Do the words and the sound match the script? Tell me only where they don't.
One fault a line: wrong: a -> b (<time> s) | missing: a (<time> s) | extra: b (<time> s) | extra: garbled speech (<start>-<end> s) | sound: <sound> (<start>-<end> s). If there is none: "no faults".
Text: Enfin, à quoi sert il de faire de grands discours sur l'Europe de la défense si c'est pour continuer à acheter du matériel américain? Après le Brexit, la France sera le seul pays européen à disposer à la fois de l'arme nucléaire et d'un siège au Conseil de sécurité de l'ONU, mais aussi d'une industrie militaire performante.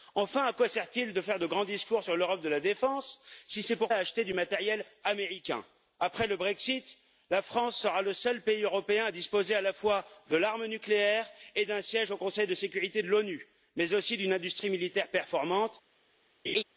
missing: continuer (3.9 s)
sound: laugh (16.4-16.6 s)